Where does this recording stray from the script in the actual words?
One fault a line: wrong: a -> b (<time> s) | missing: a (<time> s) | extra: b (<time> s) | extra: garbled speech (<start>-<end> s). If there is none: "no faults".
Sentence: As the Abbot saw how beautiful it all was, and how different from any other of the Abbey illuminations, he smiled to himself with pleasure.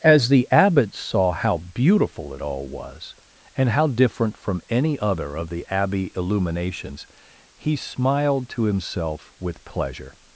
no faults